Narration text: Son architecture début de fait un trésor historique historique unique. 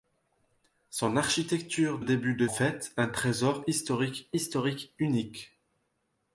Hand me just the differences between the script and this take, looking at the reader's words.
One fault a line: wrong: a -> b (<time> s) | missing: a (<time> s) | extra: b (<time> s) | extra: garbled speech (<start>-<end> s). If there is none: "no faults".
no faults